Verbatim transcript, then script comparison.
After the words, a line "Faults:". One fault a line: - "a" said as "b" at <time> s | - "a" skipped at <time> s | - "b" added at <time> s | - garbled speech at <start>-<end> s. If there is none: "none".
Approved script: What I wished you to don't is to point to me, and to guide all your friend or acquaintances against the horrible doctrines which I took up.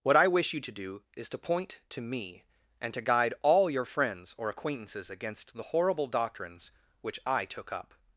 What I wish you to do is to point to me, and to guide all your friends or acquaintances against the horrible doctrines which I took up.
Faults:
- "wished" said as "wish" at 0.3 s
- "don't" said as "do" at 0.7 s
- "friend" said as "friends" at 3.8 s